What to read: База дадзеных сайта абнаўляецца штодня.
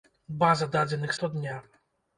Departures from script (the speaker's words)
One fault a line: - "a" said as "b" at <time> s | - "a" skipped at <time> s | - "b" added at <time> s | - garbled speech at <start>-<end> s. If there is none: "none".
- "сайта абнаўляецца" skipped at 1.1 s